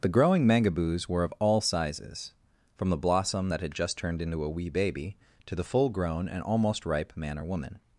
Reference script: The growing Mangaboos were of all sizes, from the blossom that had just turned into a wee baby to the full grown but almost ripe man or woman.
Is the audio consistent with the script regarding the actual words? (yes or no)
no